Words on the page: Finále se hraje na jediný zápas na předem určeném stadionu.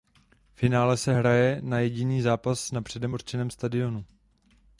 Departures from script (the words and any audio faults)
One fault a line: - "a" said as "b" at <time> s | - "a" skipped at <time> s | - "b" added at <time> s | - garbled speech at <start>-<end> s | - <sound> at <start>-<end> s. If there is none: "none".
none